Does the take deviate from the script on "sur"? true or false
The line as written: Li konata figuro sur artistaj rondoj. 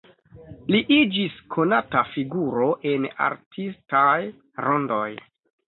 true